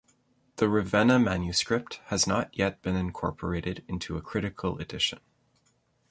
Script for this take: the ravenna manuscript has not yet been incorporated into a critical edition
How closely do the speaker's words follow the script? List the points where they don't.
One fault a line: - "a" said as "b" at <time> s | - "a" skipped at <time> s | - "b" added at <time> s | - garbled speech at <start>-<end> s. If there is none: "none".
none